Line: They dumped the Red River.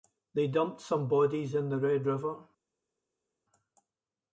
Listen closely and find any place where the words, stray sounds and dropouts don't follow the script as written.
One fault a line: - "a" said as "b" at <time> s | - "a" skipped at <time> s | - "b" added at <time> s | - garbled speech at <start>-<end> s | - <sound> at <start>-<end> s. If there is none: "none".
- "some bodies in" added at 0.8 s